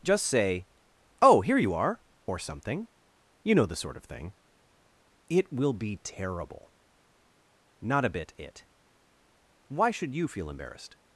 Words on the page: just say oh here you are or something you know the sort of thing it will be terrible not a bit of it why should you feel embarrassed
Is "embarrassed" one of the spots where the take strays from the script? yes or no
no